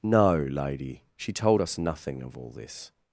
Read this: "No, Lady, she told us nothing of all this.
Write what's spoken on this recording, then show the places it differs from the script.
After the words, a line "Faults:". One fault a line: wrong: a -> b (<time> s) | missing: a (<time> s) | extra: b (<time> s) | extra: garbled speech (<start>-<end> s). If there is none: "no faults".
"No, Lady, she told us nothing of all this.
Faults:
no faults